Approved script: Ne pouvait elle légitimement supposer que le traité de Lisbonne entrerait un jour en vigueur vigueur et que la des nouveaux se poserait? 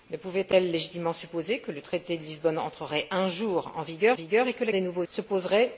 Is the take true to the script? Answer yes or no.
yes